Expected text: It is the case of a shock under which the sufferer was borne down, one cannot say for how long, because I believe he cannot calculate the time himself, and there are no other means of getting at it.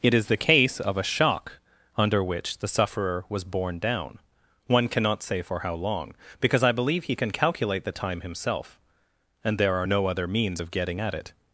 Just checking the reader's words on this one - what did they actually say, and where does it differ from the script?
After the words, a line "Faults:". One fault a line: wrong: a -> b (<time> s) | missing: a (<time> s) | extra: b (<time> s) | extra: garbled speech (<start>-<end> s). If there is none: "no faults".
It is the case of a shock under which the sufferer was borne down, one cannot say for how long, because I believe he can calculate the time himself, and there are no other means of getting at it.
Faults:
wrong: cannot -> can (7.2 s)